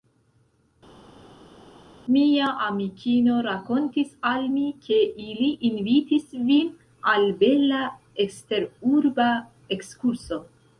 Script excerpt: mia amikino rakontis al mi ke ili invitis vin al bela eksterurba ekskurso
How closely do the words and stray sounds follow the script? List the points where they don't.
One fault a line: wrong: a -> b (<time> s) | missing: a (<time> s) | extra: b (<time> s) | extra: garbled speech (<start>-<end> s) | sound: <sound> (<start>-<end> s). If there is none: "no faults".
no faults